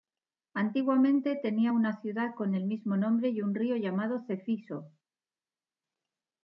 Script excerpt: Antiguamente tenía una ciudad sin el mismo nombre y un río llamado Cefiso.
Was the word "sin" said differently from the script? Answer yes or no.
yes